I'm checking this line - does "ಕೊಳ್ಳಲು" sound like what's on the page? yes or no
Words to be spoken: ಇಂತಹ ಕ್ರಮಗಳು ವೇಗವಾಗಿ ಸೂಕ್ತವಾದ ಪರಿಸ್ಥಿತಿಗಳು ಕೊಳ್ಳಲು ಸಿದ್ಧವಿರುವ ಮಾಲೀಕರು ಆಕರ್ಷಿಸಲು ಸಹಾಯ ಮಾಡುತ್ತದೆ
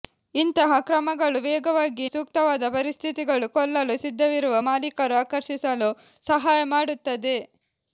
yes